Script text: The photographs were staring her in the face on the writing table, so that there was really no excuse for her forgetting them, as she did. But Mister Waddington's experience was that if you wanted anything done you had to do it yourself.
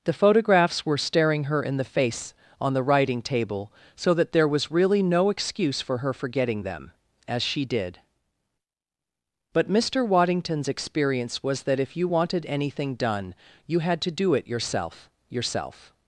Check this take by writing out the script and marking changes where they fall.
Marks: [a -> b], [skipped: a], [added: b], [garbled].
The photographs were staring her in the face on the writing table, so that there was really no excuse for her forgetting them, as she did. But Mister Waddington's experience was that if you wanted anything done you had to do it yourself. [added: yourself]